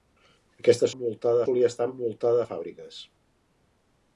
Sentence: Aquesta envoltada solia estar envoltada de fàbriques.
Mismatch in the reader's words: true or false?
false